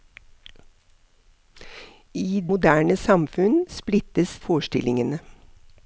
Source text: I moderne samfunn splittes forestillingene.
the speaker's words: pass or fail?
pass